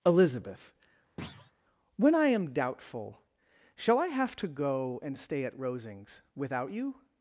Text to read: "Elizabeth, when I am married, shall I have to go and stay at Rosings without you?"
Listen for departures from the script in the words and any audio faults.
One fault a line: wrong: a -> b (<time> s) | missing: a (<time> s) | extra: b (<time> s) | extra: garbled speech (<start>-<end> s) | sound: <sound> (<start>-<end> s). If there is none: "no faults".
sound: thud (1.2-1.5 s)
wrong: married -> doubtful (2.5 s)